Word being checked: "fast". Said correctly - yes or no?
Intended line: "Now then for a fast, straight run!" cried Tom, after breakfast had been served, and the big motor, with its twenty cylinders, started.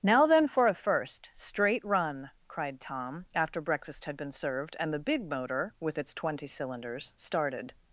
no